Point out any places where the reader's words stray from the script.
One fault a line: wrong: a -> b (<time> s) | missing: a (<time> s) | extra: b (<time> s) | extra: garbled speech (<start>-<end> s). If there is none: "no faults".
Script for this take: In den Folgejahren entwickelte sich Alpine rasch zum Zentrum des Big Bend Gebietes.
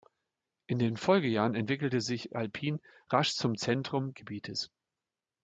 missing: des Big Bend (4.2 s)